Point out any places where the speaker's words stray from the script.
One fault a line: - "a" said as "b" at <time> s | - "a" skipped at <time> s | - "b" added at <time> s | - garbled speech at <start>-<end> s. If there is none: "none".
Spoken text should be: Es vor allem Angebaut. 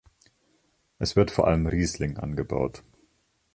- "wird" added at 1.1 s
- "Riesling" added at 1.6 s